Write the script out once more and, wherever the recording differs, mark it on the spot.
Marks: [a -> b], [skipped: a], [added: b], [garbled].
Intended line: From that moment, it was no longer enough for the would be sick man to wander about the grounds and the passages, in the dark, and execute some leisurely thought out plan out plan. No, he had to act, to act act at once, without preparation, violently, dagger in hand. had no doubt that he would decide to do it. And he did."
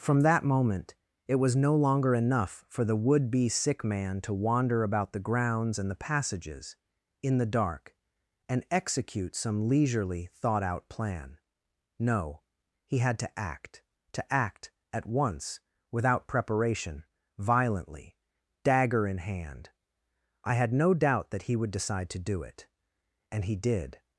From that moment, it was no longer enough for the would be sick man to wander about the grounds and the passages, in the dark, and execute some leisurely thought out plan [skipped: out plan.] No, he had to act, to act [skipped: act] at once, without preparation, violently, dagger in hand. [added: I] had no doubt that he would decide to do it. And he did."